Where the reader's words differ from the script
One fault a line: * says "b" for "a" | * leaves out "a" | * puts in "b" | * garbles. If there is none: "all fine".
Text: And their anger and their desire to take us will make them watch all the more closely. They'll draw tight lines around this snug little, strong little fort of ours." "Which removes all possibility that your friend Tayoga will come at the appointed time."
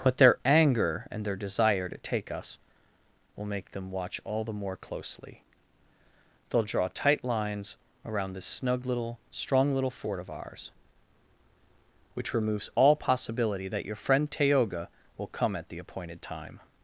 * says "But" for "And"